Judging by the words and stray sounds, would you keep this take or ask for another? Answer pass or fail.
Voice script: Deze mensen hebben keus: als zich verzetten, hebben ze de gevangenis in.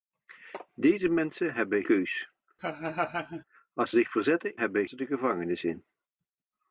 fail